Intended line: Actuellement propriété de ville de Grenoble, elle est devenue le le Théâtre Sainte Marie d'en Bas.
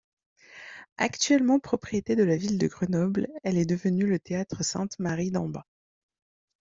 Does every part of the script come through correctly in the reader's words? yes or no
no